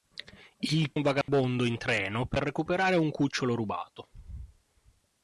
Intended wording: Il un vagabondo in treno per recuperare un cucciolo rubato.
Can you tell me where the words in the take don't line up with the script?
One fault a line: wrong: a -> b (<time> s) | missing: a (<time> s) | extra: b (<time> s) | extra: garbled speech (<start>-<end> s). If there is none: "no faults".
no faults